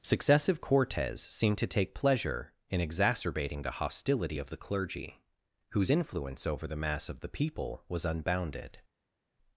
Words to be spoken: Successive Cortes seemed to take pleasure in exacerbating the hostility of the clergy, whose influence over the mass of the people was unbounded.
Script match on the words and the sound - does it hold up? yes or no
yes